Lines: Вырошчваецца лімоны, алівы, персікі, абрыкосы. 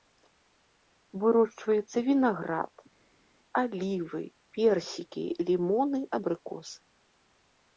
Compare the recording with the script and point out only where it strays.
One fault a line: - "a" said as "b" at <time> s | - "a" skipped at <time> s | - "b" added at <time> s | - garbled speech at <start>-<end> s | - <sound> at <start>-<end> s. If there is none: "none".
- "лімоны" said as "вінаград" at 2.1 s
- "лімоны" added at 5.5 s